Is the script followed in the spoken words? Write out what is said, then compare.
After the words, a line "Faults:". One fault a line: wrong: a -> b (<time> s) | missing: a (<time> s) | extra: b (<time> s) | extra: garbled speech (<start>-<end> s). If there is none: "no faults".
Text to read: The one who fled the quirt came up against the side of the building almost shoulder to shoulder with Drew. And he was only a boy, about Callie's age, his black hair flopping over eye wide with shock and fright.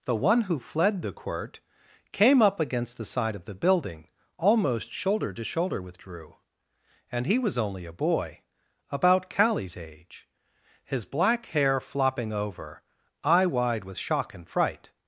The one who fled the quirt came up against the side of the building almost shoulder to shoulder with Drew. And he was only a boy, about Callie's age, his black hair flopping over eye wide with shock and fright.
Faults:
no faults